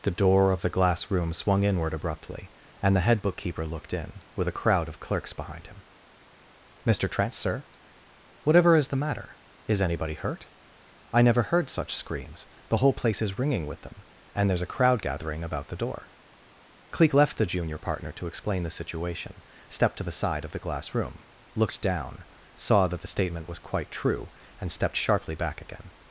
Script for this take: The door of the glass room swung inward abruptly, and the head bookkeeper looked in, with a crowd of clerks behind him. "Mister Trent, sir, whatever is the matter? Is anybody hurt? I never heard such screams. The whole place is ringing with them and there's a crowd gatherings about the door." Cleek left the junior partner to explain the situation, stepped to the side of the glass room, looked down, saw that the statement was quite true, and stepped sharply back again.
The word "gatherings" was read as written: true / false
false